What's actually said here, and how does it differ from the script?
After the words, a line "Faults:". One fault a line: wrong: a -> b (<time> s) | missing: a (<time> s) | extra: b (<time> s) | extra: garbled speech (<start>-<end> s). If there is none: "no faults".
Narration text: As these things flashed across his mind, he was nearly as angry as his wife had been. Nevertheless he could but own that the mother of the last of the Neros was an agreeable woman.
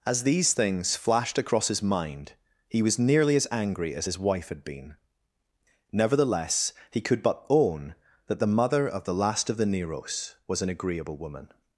As these things flashed across his mind, he was nearly as angry as his wife had been. Nevertheless he could but own that the mother of the last of the Neros was an agreeable woman.
Faults:
no faults